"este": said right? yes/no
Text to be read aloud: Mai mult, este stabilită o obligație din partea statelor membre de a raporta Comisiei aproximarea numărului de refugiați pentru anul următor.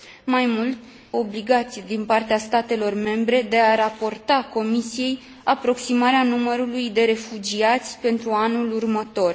no